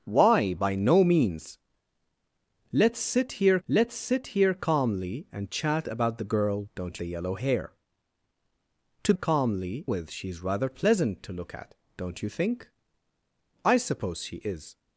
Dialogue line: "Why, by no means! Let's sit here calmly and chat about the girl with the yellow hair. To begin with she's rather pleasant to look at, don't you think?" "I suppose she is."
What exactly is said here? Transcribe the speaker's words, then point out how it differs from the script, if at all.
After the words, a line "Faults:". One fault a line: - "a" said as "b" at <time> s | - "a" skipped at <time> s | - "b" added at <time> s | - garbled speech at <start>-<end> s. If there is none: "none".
"Why, by no means! Let's sit here let's sit here calmly and chat about the girl don't the yellow hair. To calmly with she's rather pleasant to look at, don't you think?" "I suppose she is."
Faults:
- "let's sit here" added at 3.7 s
- "with" said as "don't" at 6.7 s
- "begin" said as "calmly" at 9.1 s